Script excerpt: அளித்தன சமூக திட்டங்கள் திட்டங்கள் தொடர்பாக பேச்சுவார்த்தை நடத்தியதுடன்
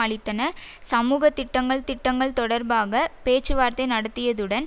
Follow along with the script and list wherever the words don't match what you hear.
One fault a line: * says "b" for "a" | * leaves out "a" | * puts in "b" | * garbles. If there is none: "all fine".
all fine